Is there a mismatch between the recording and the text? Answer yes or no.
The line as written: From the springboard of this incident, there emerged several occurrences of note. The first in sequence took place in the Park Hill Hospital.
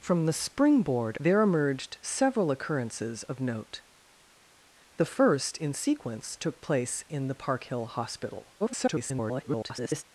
yes